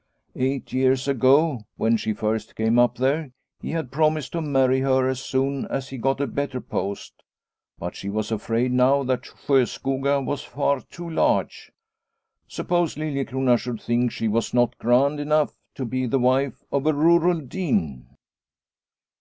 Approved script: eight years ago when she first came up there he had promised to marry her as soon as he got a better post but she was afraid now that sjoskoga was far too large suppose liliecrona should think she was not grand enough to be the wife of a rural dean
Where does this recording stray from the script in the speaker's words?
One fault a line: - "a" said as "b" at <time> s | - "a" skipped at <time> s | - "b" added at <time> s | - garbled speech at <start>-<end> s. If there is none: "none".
none